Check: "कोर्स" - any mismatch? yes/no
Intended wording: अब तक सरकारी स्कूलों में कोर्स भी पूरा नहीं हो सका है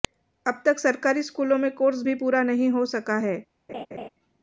no